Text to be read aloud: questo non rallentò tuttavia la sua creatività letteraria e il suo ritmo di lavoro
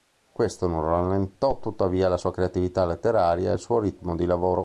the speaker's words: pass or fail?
pass